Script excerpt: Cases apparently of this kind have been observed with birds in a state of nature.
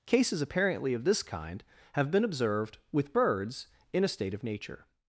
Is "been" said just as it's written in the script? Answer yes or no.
yes